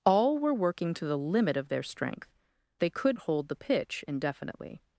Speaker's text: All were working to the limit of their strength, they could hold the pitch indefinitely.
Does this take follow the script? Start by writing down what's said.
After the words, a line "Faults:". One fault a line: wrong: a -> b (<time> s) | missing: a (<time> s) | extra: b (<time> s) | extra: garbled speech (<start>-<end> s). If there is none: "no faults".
All were working to the limit of their strength, they could hold the pitch indefinitely.
Faults:
no faults